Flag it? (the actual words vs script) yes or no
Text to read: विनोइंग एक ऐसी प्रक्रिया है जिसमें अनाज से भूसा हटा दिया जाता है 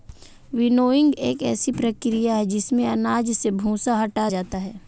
yes